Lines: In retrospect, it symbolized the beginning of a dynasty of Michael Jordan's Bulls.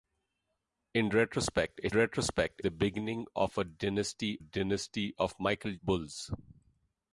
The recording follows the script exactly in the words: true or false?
false